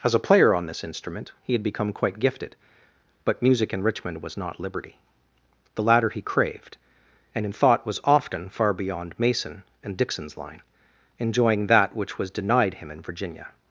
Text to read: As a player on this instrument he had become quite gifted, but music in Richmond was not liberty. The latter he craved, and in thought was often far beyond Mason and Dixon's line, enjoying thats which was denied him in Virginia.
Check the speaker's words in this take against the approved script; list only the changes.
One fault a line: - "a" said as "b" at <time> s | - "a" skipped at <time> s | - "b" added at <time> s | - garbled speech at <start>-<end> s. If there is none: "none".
- "thats" said as "that" at 11.7 s